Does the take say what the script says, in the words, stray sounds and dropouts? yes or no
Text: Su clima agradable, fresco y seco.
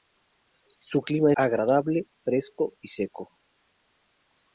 yes